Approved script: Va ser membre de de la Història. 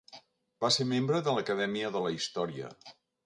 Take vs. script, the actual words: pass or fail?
fail